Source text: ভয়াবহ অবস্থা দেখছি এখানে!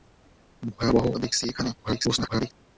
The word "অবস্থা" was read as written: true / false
false